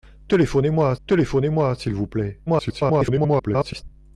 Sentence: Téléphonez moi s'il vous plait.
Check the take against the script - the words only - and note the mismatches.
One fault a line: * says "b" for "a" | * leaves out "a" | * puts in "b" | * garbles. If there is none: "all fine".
* puts in "téléphonez moi"
* garbles